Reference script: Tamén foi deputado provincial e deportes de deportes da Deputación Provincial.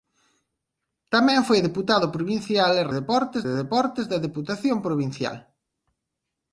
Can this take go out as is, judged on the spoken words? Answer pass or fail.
pass